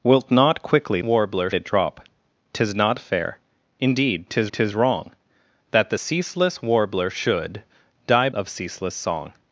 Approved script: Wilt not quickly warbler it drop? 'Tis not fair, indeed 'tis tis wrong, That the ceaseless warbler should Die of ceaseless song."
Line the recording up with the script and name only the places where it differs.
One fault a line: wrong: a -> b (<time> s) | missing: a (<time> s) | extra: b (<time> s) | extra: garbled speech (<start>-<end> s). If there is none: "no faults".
no faults